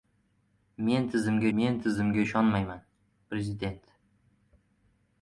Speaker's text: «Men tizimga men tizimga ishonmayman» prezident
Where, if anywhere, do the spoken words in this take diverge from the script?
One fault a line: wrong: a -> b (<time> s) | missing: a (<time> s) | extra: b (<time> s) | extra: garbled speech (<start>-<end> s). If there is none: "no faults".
no faults